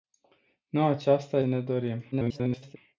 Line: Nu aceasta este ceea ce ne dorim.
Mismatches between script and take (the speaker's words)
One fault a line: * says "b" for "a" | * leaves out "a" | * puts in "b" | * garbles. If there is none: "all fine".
* leaves out "este ceea ce"
* garbles